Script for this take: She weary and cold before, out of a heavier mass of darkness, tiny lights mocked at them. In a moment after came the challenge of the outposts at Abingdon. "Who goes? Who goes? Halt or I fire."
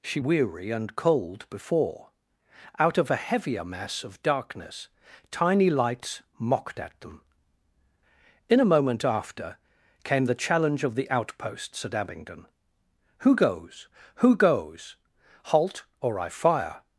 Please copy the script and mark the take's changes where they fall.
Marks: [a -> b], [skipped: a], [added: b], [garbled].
She weary and cold before, out of a heavier mass of darkness, tiny lights mocked at them. In a moment after came the challenge of the outposts at Abingdon. "Who goes? Who goes? Halt or I fire."